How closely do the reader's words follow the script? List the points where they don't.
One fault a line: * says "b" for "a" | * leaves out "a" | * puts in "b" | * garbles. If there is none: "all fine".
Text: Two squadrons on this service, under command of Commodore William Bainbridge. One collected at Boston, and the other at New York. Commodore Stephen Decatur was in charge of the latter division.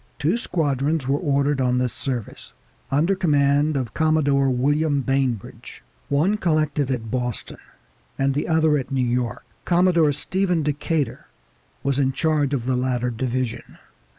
* puts in "were ordered"